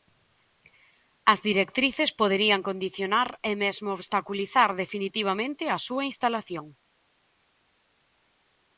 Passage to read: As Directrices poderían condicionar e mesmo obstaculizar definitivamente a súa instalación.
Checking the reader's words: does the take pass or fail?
pass